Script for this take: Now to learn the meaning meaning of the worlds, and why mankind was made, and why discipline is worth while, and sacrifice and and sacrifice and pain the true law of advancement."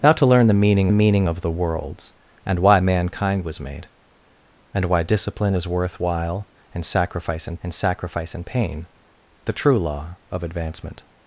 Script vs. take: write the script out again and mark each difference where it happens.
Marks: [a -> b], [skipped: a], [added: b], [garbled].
Now to learn the meaning meaning of the worlds, and why mankind was made, and why discipline is worth while, and sacrifice and and sacrifice and pain the true law of advancement."